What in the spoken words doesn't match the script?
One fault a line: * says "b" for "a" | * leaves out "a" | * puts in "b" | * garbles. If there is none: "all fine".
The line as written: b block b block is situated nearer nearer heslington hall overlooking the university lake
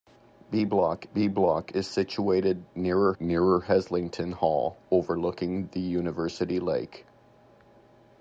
all fine